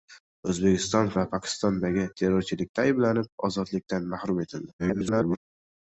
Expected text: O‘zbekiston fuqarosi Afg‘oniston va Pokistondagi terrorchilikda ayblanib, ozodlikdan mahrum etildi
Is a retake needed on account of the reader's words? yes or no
yes